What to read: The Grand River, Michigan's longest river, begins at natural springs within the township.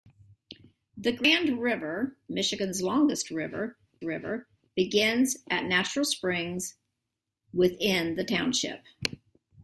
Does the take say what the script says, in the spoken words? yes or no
no